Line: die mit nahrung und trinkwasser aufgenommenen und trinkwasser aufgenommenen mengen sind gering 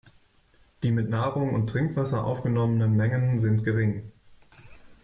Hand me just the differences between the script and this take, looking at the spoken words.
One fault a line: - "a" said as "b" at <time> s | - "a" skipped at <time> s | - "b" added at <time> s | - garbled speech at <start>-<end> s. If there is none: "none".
- "und trinkwasser aufgenommenen" skipped at 2.9 s